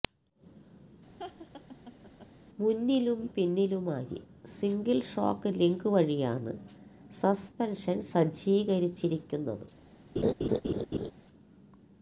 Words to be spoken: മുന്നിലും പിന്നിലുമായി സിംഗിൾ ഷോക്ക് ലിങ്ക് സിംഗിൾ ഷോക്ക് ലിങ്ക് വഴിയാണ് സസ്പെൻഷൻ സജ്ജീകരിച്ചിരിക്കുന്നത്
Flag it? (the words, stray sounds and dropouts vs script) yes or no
yes